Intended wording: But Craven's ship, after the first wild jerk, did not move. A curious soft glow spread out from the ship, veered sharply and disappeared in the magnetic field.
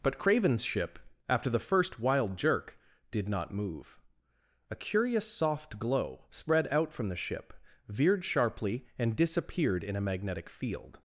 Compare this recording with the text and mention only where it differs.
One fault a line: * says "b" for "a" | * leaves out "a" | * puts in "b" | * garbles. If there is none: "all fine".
* says "a" for "the"